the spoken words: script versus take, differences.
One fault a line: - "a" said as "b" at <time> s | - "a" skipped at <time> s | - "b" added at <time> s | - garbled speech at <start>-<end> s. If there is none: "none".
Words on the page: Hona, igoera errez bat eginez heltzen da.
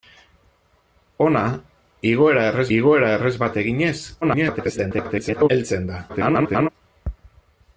- "igoera errez" added at 2.8 s
- garbled speech at 4.2-5.5 s
- garbled speech at 6.1-6.7 s